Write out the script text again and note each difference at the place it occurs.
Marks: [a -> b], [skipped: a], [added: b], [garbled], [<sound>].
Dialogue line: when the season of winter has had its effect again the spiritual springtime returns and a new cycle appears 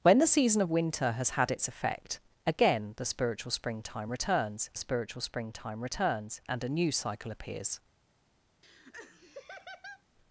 when the season of winter has had its effect again the spiritual springtime returns [added: spiritual springtime returns] and a new cycle appears [laugh]